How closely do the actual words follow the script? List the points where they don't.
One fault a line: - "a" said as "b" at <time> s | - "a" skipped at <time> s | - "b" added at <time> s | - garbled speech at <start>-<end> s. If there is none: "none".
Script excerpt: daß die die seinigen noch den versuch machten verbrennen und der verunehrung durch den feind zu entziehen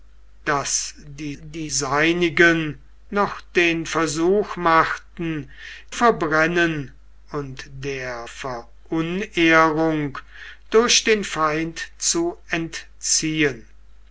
none